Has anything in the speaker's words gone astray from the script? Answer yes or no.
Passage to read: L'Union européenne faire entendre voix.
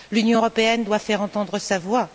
yes